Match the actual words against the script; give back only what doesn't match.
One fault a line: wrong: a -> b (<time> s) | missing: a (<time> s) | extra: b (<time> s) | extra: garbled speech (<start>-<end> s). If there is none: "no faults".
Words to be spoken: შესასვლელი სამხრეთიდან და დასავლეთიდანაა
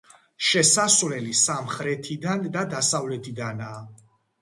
no faults